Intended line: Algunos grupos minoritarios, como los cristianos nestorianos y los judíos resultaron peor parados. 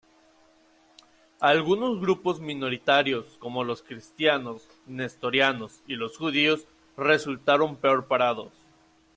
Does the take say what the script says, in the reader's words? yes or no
yes